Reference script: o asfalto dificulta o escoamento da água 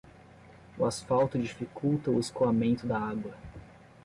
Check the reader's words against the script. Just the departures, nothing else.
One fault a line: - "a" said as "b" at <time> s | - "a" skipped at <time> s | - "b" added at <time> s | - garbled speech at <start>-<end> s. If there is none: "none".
none